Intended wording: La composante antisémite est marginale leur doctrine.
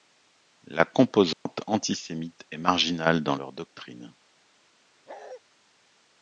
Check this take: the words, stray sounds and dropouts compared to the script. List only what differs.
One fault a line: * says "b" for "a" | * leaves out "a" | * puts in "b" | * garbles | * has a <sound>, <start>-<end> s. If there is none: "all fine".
* has a dropout, 1.3-1.5 s
* puts in "dans"
* has a bark, 5.1-5.4 s